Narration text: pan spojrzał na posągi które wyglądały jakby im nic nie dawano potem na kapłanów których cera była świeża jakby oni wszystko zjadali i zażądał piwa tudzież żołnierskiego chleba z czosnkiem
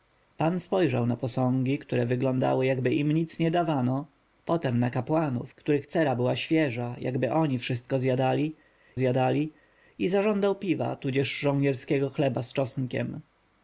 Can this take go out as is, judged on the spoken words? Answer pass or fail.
fail